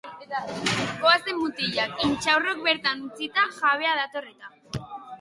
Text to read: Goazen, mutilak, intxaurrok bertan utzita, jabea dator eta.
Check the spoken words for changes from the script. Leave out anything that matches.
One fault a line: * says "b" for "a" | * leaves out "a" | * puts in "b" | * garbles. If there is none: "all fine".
all fine